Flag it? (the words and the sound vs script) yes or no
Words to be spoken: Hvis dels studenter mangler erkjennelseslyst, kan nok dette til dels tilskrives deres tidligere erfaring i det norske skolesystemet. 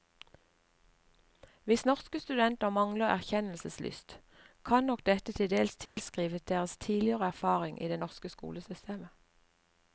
yes